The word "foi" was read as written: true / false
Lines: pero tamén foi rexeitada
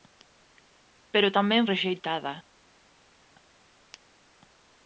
false